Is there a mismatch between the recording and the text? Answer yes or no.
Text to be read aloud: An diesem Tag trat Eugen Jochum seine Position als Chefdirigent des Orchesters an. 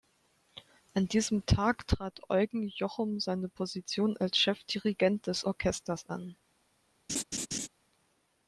no